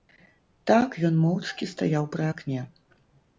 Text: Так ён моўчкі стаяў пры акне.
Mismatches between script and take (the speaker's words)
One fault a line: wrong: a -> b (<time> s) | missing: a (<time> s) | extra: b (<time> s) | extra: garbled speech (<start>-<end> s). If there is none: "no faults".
no faults